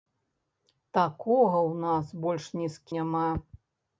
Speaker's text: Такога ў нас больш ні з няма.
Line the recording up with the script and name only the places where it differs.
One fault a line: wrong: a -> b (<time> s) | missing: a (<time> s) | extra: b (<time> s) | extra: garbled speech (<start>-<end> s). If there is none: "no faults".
no faults